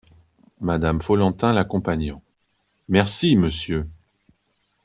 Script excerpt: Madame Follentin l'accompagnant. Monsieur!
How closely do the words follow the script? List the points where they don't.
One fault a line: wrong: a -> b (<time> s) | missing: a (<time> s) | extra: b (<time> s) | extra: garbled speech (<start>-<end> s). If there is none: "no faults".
extra: Merci (2.9 s)